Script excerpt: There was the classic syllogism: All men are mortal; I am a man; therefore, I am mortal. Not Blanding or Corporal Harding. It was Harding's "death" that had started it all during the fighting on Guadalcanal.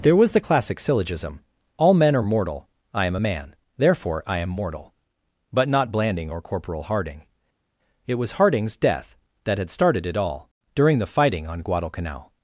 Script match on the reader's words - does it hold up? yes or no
no